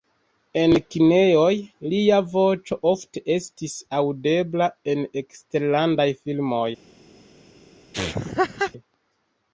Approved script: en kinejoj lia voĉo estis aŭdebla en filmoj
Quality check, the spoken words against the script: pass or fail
fail